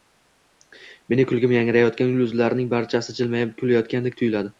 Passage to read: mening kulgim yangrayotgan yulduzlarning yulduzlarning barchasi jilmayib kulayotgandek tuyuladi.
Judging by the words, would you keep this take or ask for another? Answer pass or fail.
fail